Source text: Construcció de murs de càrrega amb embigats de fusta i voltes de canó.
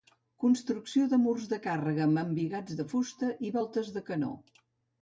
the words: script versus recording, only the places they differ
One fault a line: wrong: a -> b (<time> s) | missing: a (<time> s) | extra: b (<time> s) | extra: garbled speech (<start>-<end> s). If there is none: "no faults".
no faults